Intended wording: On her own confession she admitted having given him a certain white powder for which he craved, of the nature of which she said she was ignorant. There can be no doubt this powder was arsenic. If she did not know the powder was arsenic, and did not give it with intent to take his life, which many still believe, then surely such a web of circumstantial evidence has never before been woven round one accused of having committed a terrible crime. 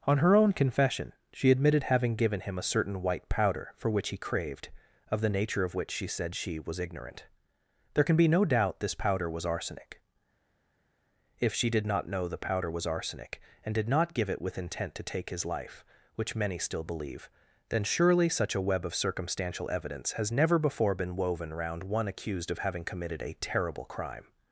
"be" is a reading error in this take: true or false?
false